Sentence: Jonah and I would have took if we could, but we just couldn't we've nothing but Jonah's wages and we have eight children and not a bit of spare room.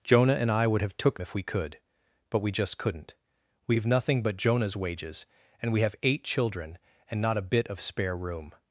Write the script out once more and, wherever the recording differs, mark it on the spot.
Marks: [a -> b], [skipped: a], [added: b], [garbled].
Jonah and I would have took if we could, but we just couldn't we've nothing but Jonah's wages and we have eight children and not a bit of spare room.